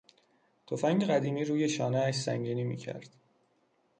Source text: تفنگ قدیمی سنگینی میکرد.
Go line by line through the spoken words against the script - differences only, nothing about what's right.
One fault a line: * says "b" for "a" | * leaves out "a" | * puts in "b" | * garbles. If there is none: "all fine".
* puts in "روی شانهاش"